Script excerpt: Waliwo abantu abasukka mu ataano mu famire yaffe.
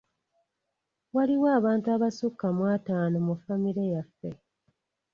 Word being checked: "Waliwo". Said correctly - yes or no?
yes